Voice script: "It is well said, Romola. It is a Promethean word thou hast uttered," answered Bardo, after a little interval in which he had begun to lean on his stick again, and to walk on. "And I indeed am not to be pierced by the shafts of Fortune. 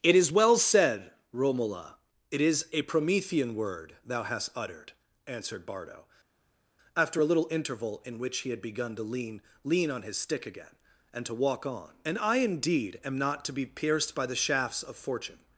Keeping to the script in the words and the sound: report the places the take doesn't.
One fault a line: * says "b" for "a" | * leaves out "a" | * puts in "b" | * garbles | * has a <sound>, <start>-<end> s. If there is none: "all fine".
* puts in "lean"